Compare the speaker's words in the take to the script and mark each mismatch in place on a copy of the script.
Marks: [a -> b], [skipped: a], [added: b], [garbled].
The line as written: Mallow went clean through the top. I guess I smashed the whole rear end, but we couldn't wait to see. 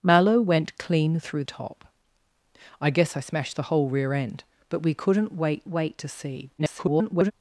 Mallow went clean through [skipped: the] top. I guess I smashed the whole rear end, but we couldn't wait [added: wait] to see. [garbled]